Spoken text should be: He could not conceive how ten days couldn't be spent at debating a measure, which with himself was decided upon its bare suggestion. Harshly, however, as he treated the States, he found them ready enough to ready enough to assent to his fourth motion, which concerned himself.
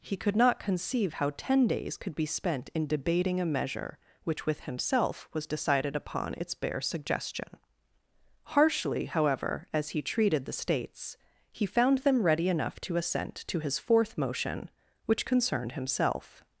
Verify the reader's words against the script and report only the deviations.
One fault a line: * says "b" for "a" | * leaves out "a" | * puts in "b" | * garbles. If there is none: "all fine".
* says "could" for "couldn't"
* says "in" for "at"
* leaves out "ready enough to"